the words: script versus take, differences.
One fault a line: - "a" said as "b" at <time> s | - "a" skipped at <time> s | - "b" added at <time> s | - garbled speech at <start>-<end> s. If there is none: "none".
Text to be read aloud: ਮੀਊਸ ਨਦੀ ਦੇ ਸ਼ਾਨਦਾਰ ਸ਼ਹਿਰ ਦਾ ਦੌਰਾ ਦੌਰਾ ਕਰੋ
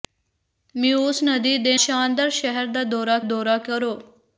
none